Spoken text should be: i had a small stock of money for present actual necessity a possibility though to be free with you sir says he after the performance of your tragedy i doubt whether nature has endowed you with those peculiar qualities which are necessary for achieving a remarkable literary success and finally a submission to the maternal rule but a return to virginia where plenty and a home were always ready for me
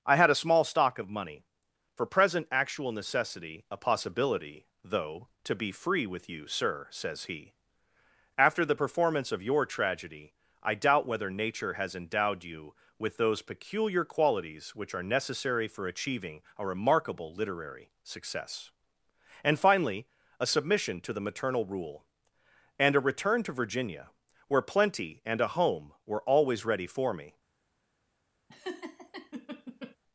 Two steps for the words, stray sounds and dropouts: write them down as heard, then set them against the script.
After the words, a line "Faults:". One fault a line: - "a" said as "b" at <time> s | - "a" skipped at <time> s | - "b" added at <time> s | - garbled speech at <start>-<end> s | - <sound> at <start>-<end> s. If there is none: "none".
i had a small stock of money for present actual necessity a possibility though to be free with you sir says he after the performance of your tragedy i doubt whether nature has endowed you with those peculiar qualities which are necessary for achieving a remarkable literary success and finally a submission to the maternal rule and a return to virginia where plenty and a home were always ready for me
Faults:
- "but" said as "and" at 22.8 s
- laugh at 28.5-30.0 s